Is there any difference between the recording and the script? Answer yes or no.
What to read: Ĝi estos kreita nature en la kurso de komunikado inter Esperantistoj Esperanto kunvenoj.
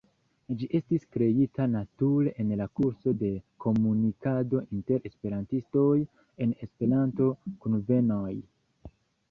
yes